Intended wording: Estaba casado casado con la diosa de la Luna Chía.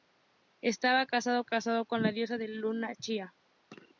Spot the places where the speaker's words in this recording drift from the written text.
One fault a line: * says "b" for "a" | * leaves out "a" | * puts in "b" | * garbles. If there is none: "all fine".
all fine